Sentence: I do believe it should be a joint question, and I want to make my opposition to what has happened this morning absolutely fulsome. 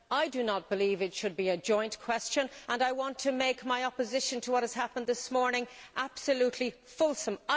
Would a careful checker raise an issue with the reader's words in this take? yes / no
yes